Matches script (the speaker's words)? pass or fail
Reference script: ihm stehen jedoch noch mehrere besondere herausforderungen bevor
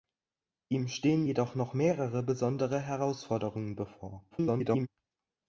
fail